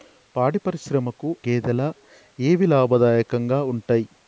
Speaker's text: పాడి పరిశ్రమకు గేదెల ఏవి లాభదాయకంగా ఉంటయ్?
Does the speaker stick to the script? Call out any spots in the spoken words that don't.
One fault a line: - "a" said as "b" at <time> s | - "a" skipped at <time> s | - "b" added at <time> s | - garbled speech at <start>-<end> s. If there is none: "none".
none